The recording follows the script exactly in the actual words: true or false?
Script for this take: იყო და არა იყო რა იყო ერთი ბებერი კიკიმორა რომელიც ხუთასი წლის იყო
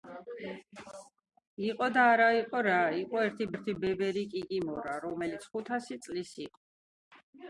false